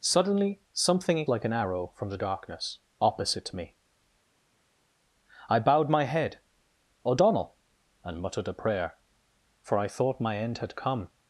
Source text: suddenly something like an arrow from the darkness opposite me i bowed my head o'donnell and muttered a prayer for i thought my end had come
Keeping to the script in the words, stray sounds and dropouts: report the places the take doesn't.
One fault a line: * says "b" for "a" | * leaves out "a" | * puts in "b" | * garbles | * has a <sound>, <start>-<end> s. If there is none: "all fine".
all fine